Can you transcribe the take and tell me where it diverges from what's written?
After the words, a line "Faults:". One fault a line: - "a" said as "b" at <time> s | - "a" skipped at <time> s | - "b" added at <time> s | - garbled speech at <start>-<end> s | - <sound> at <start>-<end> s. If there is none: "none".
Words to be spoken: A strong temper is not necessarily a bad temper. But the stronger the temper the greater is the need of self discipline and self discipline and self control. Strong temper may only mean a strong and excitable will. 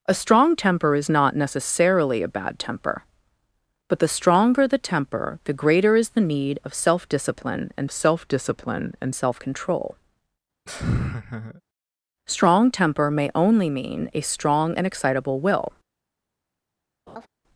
A strong temper is not necessarily a bad temper. But the stronger the temper the greater is the need of self discipline and self discipline and self control. Strong temper may only mean a strong and excitable will.
Faults:
- laugh at 10.7-11.6 s
- laugh at 17.1-17.3 s